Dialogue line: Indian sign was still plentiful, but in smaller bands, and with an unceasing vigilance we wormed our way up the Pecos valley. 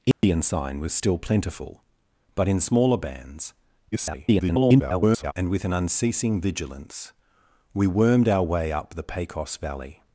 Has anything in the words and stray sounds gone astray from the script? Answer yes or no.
yes